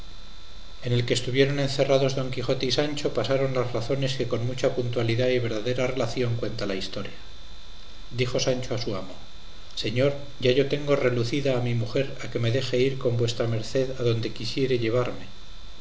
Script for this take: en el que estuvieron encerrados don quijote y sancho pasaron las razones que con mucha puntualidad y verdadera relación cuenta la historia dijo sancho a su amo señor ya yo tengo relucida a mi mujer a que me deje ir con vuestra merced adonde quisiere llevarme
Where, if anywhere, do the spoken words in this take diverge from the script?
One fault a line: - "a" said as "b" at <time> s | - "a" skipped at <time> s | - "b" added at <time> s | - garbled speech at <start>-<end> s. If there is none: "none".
none